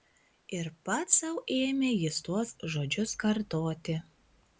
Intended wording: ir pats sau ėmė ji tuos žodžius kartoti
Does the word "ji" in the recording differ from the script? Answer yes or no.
yes